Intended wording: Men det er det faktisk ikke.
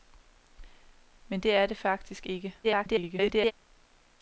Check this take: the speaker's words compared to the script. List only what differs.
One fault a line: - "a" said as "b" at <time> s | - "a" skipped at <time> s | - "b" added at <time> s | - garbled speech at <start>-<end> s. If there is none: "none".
- garbled speech at 2.6-3.5 s